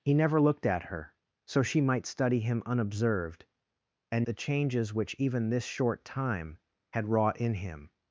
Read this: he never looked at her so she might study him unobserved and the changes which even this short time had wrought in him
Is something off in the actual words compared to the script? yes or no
no